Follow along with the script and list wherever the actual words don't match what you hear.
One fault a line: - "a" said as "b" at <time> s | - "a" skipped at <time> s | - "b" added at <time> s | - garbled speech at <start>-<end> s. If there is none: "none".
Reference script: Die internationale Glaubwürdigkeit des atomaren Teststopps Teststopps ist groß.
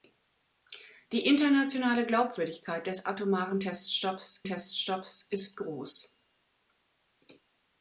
none